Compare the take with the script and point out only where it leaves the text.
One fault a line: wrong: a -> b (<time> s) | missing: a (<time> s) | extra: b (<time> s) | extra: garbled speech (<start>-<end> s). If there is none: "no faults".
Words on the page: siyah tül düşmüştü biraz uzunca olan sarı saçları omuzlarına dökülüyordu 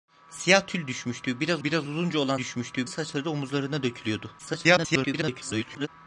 extra: biraz (1.6 s)
wrong: sarı -> düşmüştü (2.4 s)
extra: garbled speech (4.4-5.9 s)